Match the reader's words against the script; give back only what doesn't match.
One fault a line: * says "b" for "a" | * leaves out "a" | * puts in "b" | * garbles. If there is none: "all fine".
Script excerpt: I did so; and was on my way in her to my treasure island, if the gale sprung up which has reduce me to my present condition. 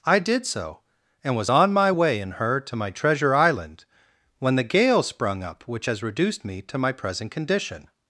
* says "when" for "if"
* says "reduced" for "reduce"